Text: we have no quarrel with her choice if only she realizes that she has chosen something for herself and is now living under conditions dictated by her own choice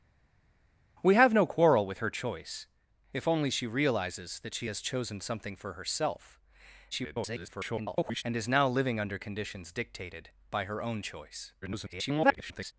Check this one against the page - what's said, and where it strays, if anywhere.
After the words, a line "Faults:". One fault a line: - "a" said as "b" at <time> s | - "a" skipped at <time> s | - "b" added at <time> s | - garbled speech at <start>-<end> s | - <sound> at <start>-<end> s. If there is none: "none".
we have no quarrel with her choice if only she realizes that she has chosen something for herself [garbled] and is now living under conditions dictated by her own choice [garbled]
Faults:
- garbled speech at 6.9-8.2 s
- garbled speech at 11.6-12.7 s